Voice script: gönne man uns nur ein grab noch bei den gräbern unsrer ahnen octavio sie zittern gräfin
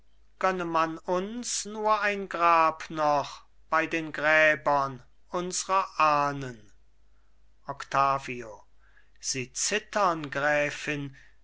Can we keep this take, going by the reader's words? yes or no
yes